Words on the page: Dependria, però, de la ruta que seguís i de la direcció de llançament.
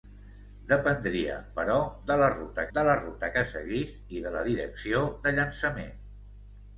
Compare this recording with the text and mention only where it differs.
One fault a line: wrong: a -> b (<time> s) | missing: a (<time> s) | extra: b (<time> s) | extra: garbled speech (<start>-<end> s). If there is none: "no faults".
extra: de la ruta (2.7 s)